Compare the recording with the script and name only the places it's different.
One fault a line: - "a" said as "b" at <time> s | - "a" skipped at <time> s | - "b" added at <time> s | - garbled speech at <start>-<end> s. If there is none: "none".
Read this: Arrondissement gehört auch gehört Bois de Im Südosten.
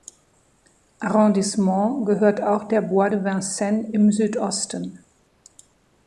- "gehört" said as "der" at 2.6 s
- "Vincennes" added at 3.2 s